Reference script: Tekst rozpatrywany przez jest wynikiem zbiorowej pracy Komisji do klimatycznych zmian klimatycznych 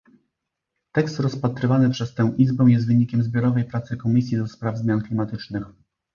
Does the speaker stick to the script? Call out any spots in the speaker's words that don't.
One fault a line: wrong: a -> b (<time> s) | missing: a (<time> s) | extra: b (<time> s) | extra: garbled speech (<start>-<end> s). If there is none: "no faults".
extra: tę Izbę (2.1 s)
wrong: klimatycznych -> spraw (4.5 s)